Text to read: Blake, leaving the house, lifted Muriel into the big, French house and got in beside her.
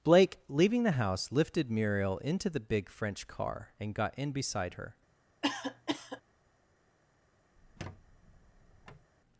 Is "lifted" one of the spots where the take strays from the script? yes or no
no